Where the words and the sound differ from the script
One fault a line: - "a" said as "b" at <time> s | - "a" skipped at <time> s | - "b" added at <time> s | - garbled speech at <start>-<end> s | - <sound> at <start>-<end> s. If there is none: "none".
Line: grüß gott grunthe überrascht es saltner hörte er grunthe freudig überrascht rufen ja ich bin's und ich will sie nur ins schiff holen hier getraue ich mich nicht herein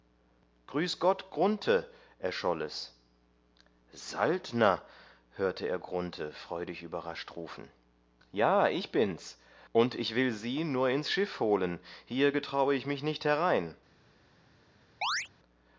- "überrascht" said as "erscholl" at 2.2 s
- chirp at 15.0-15.3 s